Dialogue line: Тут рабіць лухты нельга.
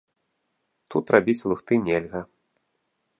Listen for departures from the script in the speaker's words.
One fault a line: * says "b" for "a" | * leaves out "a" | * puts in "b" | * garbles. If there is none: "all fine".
all fine